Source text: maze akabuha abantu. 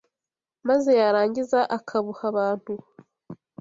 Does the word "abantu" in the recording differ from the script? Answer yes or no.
no